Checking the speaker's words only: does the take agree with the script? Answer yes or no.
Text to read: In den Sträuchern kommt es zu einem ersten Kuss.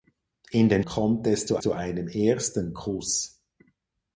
no